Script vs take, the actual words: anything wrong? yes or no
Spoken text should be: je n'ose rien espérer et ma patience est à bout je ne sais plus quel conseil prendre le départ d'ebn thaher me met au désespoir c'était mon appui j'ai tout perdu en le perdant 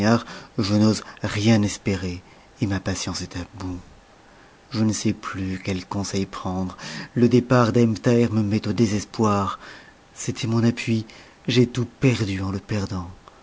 no